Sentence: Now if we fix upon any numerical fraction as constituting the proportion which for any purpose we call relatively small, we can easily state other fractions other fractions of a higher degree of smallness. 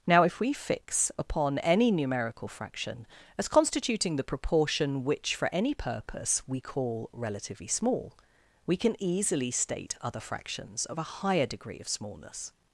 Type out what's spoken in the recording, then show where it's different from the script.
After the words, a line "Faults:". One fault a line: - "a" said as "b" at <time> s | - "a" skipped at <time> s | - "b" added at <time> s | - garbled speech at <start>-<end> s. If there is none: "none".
Now if we fix upon any numerical fraction as constituting the proportion which for any purpose we call relatively small, we can easily state other fractions of a higher degree of smallness.
Faults:
- "other fractions" skipped at 10.9 s